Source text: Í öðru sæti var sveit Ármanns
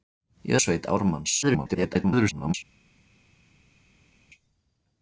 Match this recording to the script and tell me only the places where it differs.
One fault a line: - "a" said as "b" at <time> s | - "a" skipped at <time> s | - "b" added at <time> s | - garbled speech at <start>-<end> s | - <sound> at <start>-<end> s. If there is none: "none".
- "öðru sæti" skipped at 0.6 s
- garbled speech at 1.4-2.5 s